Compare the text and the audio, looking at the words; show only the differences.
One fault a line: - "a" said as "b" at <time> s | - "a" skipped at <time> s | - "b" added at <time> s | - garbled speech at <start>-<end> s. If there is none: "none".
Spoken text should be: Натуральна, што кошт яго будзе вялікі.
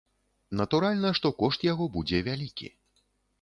none